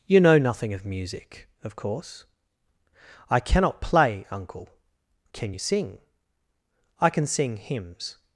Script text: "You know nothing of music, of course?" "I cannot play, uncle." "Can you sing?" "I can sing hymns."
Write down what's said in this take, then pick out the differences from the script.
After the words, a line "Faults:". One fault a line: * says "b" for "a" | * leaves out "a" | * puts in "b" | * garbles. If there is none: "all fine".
"You know nothing of music, of course?" "I cannot play, uncle." "Can you sing?" "I can sing hymns."
Faults:
all fine